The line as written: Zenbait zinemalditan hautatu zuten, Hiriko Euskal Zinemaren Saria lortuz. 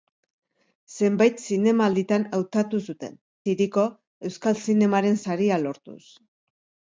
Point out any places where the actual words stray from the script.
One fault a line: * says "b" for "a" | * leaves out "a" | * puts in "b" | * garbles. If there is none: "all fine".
all fine